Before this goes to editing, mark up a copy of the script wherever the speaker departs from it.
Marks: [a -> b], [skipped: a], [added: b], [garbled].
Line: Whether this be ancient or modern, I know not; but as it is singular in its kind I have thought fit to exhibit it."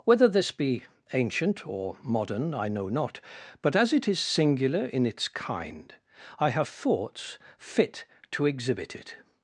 Whether this be ancient or modern, I know not; but as it is singular in its kind I have [thought -> thoughts] fit to exhibit it."